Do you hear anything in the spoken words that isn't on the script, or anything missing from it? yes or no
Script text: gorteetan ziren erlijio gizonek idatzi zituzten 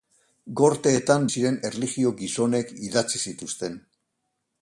no